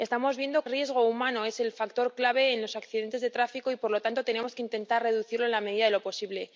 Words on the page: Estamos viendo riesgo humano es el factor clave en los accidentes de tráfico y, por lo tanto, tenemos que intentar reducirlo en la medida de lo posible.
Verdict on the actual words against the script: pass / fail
pass